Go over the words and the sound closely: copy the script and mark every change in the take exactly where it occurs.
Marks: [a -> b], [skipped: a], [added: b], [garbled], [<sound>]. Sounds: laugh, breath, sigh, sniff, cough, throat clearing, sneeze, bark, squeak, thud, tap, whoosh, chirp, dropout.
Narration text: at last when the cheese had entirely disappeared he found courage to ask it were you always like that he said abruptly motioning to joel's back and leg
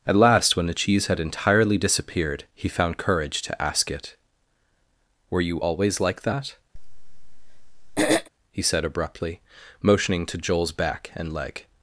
at last when the cheese had entirely disappeared he found courage to ask it were you always like that [throat clearing] he said abruptly motioning to joel's back and leg